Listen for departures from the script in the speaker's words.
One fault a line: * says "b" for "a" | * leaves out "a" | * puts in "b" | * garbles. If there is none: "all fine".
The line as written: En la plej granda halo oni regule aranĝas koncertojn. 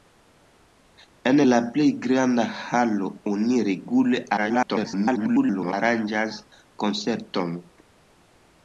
* garbles